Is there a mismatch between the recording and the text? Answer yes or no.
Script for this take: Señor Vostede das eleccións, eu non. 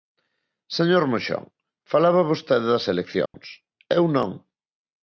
yes